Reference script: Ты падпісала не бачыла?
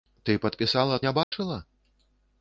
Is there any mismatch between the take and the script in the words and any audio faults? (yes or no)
yes